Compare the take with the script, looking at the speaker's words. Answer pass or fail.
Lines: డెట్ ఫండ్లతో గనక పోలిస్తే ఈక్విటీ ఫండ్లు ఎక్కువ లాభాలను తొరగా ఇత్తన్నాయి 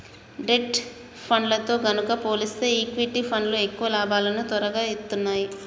pass